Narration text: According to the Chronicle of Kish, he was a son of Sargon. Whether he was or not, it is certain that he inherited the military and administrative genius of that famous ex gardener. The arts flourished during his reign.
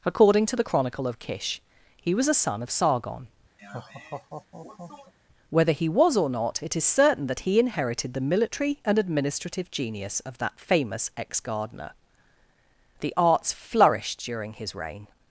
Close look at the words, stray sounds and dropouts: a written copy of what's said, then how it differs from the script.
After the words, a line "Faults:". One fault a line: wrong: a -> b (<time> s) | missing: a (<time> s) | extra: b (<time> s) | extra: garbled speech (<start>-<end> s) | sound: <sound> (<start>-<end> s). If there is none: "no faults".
According to the Chronicle of Kish, he was a son of Sargon. Whether he was or not, it is certain that he inherited the military and administrative genius of that famous ex gardener. The arts flourished during his reign.
Faults:
sound: laugh (3.6-5.1 s)